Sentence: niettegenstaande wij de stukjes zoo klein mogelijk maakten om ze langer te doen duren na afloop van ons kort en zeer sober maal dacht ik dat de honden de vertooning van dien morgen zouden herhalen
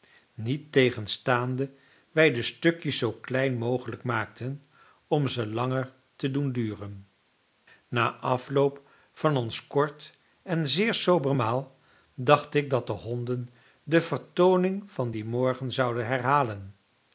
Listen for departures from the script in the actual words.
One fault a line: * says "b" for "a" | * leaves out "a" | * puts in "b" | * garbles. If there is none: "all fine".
all fine